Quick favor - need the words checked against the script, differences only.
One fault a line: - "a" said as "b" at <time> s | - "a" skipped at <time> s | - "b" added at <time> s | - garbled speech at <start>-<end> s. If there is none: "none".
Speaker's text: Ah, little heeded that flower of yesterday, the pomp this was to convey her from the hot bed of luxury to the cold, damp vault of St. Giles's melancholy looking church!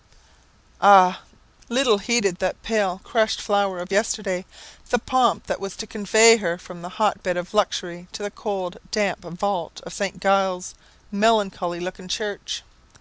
- "pale crushed" added at 2.6 s
- "this" said as "that" at 5.5 s